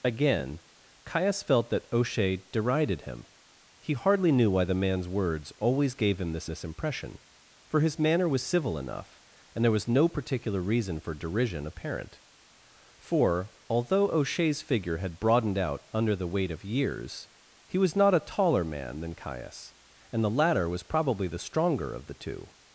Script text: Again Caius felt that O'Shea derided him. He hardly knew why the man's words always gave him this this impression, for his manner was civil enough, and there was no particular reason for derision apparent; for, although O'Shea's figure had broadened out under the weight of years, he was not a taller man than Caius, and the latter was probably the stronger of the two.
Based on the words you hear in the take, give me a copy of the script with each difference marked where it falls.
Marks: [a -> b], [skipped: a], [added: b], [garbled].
Again Caius felt that O'Shea derided him. He hardly knew why the man's words always gave him this this impression, for his manner was civil enough, and there was no particular reason for derision apparent; for, although O'Shea's figure had broadened out under the weight of years, he was not a taller man than Caius, and the latter was probably the stronger of the two.